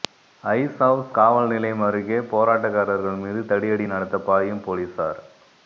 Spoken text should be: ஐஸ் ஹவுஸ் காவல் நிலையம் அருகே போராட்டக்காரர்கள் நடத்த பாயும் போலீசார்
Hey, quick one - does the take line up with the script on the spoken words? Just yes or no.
no